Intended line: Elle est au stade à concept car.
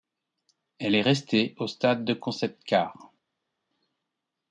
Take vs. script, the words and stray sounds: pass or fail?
fail